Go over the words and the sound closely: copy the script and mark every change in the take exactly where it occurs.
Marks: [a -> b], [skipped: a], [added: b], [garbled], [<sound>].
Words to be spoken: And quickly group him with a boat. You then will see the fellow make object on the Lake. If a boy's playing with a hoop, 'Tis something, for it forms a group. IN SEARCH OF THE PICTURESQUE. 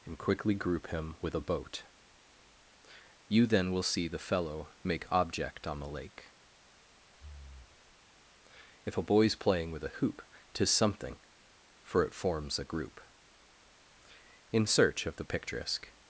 And quickly group him with a boat. You then will see the fellow make object on the Lake. [breath] If a boy's playing with a hoop, 'Tis something, for it forms a group. IN SEARCH OF THE PICTURESQUE.